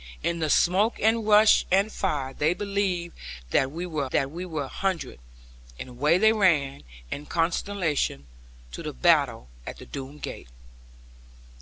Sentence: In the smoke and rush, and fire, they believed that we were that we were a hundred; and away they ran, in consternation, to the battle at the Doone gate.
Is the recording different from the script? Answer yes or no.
no